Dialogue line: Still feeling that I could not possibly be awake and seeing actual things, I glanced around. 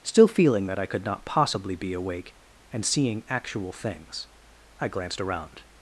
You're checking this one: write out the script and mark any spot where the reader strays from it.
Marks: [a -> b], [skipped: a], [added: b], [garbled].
Still feeling that I could not possibly be awake and seeing actual things, I glanced around.